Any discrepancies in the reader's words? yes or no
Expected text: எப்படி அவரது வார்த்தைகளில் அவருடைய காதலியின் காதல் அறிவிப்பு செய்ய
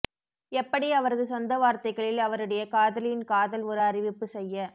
yes